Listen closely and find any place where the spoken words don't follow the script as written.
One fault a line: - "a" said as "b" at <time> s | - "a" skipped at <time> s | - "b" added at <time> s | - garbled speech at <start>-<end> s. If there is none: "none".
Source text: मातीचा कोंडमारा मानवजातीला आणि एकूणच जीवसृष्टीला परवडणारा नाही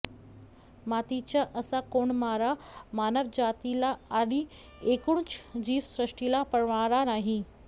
- "असा" added at 1.6 s